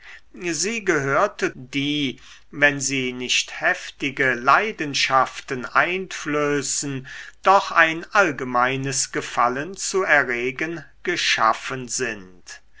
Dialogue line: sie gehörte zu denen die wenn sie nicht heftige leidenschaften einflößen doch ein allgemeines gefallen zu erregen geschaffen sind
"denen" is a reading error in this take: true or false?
true